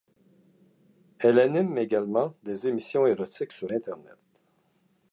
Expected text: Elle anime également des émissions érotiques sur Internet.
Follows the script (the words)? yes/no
yes